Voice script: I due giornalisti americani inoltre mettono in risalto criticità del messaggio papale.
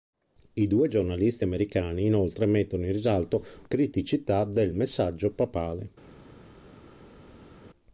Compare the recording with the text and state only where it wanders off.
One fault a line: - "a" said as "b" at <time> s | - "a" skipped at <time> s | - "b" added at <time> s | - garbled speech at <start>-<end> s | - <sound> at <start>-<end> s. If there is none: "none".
none